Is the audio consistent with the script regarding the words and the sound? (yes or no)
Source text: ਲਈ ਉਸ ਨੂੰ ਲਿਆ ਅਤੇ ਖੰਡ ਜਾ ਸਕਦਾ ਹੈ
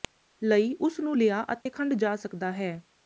no